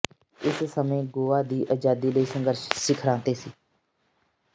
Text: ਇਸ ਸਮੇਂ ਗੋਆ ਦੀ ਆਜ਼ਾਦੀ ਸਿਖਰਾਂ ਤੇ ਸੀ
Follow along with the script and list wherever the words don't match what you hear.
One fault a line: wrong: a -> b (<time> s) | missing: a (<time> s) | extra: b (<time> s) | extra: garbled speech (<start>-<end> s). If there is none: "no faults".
extra: ਲਈ ਸੰਘਰਸ਼ (2.1 s)